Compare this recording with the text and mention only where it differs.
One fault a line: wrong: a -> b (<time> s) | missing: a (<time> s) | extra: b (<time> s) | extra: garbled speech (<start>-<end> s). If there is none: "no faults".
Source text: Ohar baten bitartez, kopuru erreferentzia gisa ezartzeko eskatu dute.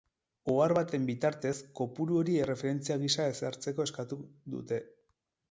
extra: hori (2.2 s)